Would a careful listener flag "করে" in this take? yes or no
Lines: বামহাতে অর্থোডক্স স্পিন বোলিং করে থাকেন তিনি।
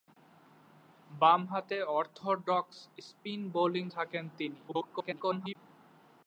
yes